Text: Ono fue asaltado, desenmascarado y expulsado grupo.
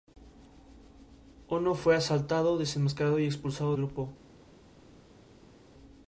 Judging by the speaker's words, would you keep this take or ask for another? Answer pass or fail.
pass